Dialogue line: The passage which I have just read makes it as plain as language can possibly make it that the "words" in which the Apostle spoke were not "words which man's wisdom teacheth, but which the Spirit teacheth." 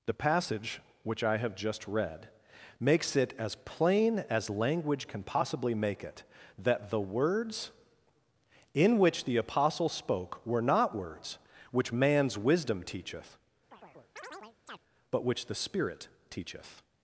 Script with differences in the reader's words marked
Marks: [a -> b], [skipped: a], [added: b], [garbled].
The passage which I have just read makes it as plain as language can possibly make it that the "words" in which the Apostle spoke were not "words which man's wisdom teacheth, but which the Spirit teacheth."